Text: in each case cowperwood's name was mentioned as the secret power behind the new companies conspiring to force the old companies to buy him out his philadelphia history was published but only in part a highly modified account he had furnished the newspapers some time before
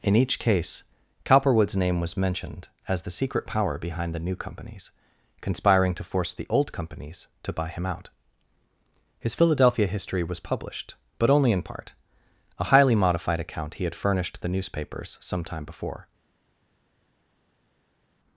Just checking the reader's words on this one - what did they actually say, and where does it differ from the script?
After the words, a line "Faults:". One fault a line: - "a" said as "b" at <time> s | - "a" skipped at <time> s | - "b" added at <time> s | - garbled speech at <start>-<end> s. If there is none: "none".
in each case cowperwood's name was mentioned as the secret power behind the new companies conspiring to force the old companies to buy him out his philadelphia history was published but only in part a highly modified account he had furnished the newspapers some time before
Faults:
none